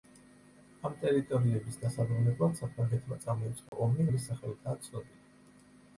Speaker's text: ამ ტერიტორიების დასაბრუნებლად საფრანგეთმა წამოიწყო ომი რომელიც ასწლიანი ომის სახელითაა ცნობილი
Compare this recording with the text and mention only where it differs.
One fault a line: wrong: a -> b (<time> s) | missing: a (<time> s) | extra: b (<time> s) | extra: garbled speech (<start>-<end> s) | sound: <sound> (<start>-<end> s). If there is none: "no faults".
sound: dropout (3.7-3.7 s)
missing: რომელიც ასწლიანი (4.1 s)